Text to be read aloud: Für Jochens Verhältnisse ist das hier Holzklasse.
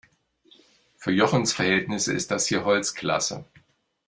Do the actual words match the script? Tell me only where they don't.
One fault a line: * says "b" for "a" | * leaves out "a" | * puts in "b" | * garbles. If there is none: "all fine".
all fine